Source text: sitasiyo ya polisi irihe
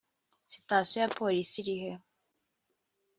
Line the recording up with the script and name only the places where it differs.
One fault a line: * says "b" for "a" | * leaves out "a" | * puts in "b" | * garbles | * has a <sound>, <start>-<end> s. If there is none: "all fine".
all fine